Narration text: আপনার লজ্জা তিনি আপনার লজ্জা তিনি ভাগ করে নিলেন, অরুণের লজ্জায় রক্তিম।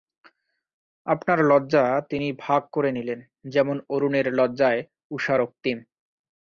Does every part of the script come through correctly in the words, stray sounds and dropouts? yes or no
no